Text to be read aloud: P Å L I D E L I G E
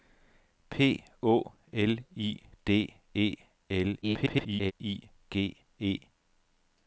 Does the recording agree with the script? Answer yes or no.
no